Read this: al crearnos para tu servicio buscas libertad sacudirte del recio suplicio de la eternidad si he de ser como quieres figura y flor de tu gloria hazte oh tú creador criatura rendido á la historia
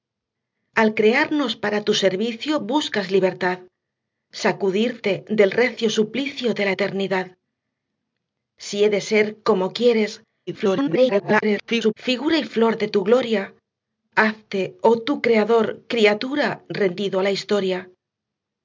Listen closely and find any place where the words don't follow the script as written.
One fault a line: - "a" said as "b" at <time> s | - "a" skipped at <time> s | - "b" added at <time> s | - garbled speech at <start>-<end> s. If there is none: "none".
- garbled speech at 10.5-11.9 s